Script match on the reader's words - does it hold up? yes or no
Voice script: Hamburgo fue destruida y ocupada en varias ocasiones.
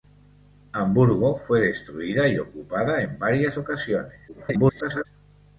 no